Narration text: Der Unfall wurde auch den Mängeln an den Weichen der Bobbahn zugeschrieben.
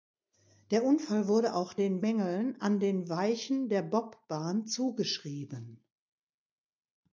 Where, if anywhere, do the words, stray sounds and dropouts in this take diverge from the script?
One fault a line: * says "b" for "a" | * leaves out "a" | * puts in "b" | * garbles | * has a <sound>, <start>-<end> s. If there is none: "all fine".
all fine